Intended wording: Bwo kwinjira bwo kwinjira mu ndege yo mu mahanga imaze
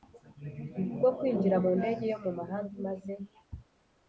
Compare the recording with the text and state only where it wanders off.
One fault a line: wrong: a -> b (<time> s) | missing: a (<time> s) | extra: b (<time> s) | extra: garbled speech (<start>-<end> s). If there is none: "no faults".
missing: bwo kwinjira (1.6 s)